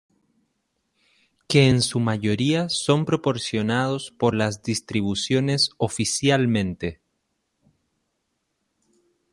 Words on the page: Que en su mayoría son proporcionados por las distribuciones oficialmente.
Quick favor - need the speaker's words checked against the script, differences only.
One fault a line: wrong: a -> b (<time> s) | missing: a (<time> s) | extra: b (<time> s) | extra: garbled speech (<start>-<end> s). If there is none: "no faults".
no faults